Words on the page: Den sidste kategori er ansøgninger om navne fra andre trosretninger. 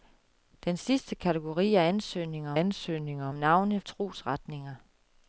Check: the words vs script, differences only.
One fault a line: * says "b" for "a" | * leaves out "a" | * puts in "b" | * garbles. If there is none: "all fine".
* puts in "ansøgninger"
* leaves out "fra andre"